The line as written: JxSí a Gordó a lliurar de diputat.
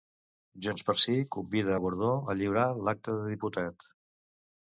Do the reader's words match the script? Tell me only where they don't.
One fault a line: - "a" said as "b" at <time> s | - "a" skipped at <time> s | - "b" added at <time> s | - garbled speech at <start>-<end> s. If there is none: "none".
- "convida" added at 1.4 s
- "l'acta" added at 2.9 s